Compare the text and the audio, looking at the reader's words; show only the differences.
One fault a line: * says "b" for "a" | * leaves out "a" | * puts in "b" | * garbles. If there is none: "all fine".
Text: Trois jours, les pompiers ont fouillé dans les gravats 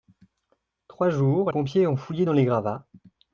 * leaves out "les"